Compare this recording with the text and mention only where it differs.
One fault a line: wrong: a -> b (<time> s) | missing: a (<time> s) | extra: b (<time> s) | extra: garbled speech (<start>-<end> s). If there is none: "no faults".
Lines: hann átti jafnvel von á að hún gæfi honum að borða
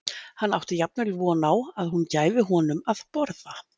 no faults